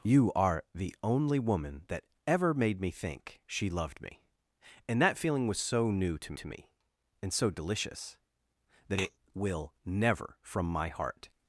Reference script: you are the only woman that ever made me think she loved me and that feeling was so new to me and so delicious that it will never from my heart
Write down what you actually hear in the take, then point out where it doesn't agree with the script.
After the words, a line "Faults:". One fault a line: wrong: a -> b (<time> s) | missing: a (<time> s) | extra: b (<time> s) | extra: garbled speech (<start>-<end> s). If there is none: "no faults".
you are the only woman that ever made me think she loved me and that feeling was so new to to me and so delicious that it will never from my heart
Faults:
extra: to (6.3 s)